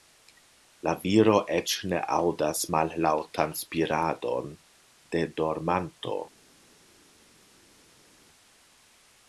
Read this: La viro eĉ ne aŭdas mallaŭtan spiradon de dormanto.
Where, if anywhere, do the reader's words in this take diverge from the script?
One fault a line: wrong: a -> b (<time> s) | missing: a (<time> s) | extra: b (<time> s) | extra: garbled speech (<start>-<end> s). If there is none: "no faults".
no faults